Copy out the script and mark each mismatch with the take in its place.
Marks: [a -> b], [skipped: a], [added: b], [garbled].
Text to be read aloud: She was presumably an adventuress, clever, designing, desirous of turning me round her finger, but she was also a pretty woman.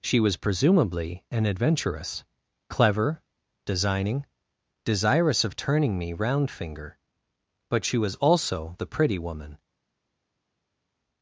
She was presumably an adventuress, clever, designing, desirous of turning me round [skipped: her] finger, but she was also [a -> the] pretty woman.